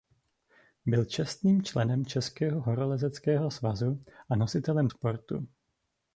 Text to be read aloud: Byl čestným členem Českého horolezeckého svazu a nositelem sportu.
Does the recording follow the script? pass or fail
pass